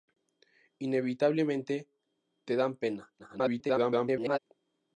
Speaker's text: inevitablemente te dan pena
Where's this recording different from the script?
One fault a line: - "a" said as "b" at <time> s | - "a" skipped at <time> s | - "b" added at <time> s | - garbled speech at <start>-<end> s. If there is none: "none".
- garbled speech at 3.2-4.4 s